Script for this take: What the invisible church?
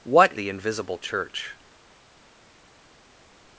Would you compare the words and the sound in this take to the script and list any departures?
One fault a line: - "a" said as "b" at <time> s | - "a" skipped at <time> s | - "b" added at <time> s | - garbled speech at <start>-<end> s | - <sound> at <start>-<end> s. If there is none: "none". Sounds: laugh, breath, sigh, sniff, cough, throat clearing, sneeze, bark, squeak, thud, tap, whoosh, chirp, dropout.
none